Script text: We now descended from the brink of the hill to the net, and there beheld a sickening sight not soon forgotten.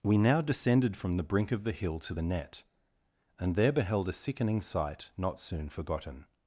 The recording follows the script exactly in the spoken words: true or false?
true